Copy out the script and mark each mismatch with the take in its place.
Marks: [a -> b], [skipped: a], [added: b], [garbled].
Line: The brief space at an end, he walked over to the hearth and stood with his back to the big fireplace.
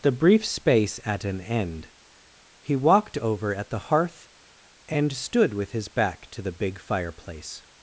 The brief space at an end, he walked over [to -> at] the hearth and stood with his back to the big fireplace.